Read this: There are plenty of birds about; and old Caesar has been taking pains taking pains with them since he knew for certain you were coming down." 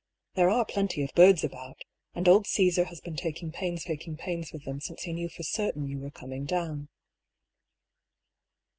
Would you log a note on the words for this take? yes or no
no